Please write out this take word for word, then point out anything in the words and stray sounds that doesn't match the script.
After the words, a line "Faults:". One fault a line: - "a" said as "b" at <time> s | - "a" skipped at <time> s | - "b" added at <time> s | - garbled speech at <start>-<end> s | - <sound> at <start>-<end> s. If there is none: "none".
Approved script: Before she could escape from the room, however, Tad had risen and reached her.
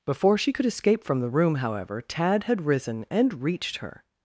Before she could escape from the room, however, Tad had risen and reached her.
Faults:
none